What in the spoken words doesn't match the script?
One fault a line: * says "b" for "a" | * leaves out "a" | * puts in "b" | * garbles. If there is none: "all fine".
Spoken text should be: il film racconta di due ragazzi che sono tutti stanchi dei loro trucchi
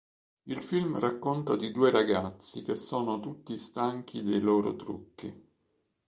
all fine